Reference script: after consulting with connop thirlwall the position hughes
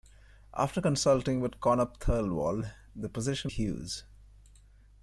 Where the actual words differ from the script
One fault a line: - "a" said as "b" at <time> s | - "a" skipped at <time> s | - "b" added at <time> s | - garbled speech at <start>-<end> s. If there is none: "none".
none